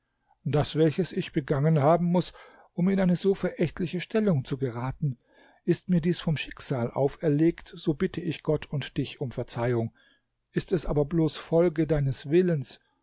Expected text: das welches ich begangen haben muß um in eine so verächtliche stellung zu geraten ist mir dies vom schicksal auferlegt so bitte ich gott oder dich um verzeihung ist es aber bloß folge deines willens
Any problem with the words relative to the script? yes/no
yes